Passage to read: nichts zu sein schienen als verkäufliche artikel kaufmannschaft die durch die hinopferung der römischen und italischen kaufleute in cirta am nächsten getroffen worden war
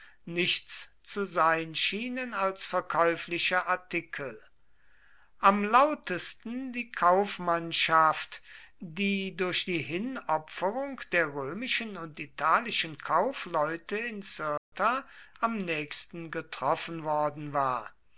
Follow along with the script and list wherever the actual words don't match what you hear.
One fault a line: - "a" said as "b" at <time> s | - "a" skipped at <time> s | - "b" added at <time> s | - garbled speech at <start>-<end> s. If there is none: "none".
- "am lautesten die" added at 5.4 s